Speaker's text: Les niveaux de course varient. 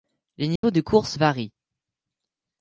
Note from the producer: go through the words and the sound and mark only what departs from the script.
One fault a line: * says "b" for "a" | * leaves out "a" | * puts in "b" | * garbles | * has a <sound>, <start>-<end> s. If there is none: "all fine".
* has a dropout, 0.6-0.6 s